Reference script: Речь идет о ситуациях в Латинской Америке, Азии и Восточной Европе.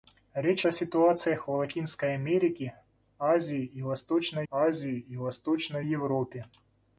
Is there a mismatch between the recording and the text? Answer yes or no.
yes